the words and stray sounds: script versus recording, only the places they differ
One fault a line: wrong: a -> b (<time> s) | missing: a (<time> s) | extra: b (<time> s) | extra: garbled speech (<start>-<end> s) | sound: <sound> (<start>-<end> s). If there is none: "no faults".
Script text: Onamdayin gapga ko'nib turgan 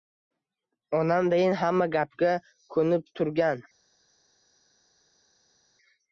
extra: hamma (1.6 s)